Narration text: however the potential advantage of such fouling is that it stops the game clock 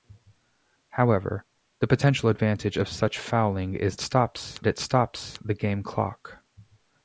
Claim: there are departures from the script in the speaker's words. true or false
true